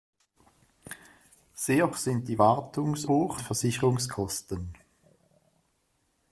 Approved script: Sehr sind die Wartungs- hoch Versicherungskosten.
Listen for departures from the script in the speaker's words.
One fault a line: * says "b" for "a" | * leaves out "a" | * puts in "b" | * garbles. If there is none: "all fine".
all fine